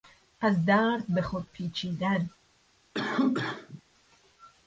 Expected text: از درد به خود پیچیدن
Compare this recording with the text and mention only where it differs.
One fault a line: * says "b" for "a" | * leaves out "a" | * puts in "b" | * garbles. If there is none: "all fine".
all fine